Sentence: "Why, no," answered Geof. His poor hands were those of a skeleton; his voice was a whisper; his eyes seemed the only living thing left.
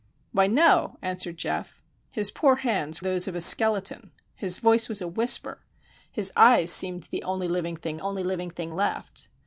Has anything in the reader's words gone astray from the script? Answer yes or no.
yes